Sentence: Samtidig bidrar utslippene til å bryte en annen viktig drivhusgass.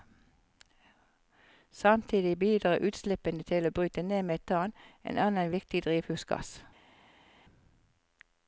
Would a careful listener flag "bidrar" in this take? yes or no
no